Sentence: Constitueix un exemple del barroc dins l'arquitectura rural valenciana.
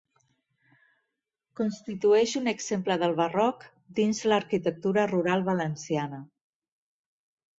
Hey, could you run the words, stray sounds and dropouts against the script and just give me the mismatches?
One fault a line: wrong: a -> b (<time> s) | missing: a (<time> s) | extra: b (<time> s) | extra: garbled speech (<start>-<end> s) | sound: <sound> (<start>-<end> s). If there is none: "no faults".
no faults